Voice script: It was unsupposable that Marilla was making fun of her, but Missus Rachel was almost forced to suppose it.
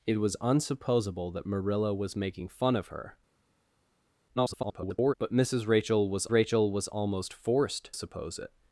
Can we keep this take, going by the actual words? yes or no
no